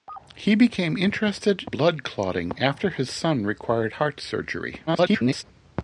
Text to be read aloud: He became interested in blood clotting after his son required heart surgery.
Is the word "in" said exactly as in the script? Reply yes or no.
no